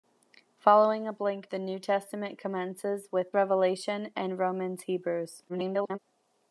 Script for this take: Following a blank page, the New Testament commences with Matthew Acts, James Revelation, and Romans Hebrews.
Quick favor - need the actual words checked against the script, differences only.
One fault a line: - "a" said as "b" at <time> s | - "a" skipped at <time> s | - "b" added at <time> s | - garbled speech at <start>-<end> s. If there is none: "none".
- "page" skipped at 1.5 s
- "Matthew Acts James" skipped at 3.4 s
- garbled speech at 5.5-6.0 s